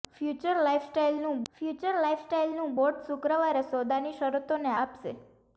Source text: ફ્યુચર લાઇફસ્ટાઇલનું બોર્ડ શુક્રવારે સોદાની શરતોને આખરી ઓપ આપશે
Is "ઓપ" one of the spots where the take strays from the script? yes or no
yes